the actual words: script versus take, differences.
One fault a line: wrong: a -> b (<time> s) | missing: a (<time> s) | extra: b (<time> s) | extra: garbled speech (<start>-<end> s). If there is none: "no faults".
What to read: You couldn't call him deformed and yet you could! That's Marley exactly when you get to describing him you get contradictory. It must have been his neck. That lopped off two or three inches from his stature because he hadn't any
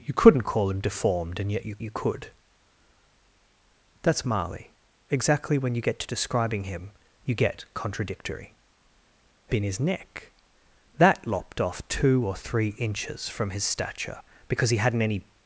extra: you (1.8 s)
missing: must have (9.5 s)